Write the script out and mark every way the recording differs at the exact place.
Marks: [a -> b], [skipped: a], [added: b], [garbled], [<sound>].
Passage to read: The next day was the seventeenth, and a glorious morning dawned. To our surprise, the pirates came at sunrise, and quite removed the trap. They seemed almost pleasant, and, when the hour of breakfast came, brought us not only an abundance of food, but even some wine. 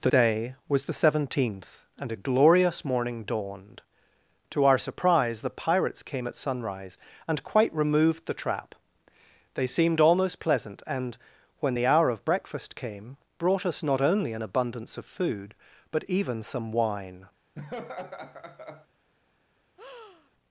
The [skipped: next] day was the seventeenth, and a glorious morning dawned. To our surprise, the pirates came at sunrise, and quite removed the trap. They seemed almost pleasant, and, when the hour of breakfast came, brought us not only an abundance of food, but even some wine. [laugh] [breath]